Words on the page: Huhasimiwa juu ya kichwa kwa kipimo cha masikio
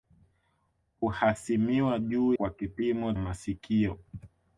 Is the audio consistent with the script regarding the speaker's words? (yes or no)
no